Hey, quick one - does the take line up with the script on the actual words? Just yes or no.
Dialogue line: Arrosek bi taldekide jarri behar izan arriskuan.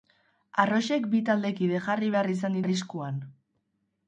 yes